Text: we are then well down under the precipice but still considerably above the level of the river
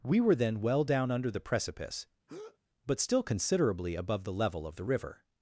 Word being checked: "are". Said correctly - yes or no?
no